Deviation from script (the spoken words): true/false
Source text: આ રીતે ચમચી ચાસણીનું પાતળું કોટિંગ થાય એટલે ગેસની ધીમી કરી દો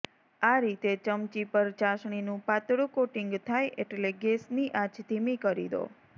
true